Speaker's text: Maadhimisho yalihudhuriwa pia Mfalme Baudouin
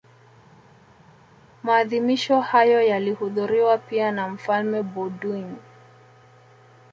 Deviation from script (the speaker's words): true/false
true